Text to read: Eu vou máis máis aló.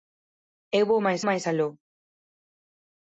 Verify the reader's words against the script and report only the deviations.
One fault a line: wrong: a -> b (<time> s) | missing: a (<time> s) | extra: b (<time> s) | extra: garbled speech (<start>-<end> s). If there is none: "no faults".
no faults